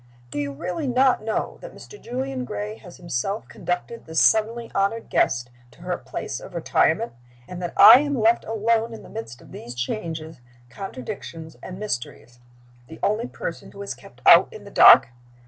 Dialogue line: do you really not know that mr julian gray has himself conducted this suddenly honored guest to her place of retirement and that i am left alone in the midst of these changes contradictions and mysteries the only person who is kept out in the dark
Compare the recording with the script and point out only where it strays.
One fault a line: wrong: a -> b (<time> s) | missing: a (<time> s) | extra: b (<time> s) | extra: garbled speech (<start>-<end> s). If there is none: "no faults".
no faults